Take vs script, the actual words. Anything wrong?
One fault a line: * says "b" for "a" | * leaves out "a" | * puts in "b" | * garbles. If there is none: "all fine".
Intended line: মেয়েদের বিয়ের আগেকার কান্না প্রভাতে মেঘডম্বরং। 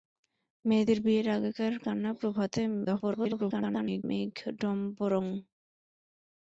* garbles